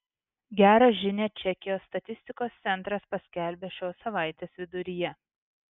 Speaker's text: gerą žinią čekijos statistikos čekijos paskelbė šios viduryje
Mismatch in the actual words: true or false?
true